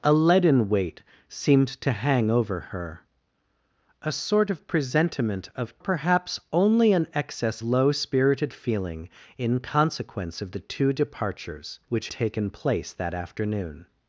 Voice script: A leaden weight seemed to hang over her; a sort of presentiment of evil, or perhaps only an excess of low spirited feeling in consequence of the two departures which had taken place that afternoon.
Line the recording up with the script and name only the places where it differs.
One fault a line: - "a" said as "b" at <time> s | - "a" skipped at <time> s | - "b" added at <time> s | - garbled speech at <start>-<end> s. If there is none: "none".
- "evil or" skipped at 5.8 s
- "of" skipped at 7.6 s
- "had" skipped at 12.1 s